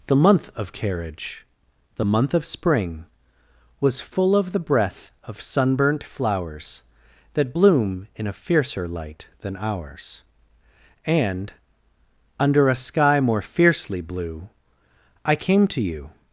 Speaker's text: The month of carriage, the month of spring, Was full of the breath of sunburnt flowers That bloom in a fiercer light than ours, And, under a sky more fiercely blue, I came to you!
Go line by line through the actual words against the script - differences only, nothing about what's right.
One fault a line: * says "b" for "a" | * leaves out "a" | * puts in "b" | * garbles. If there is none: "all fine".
all fine